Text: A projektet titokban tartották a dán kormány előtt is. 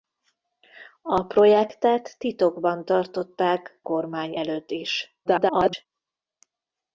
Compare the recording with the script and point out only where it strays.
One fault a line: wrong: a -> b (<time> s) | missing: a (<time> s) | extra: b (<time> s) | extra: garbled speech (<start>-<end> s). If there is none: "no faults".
missing: a dán (3.8 s)
extra: garbled speech (5.3-5.9 s)